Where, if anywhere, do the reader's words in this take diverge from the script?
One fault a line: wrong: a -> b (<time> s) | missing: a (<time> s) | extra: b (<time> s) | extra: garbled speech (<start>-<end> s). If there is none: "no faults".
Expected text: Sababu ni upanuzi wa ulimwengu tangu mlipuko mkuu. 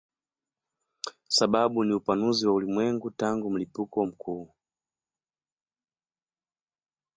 no faults